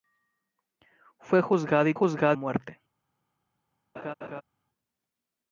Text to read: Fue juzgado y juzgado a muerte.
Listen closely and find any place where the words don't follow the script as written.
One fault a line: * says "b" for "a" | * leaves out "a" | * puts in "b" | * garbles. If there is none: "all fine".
all fine